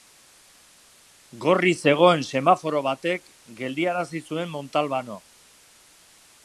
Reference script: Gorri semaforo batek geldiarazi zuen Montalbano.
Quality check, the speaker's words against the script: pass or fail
fail